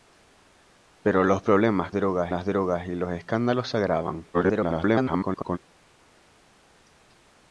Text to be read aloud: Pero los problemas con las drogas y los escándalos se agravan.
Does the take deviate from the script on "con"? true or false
true